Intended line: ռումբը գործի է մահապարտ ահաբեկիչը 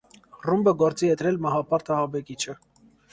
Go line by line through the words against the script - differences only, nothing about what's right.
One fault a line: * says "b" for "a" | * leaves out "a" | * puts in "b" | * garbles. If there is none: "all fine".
* puts in "դրել"